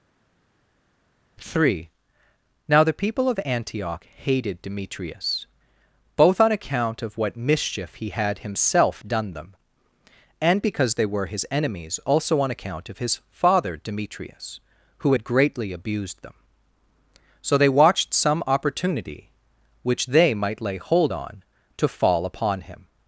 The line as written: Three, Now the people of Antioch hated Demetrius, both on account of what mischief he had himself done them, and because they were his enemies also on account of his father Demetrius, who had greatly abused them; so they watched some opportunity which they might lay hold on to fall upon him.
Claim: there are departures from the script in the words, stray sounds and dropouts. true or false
false